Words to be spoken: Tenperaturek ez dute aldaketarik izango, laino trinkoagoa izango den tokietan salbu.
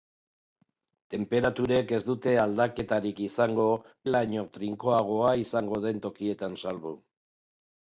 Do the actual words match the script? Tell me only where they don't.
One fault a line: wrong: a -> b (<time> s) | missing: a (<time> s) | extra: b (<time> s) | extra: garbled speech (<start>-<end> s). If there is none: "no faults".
no faults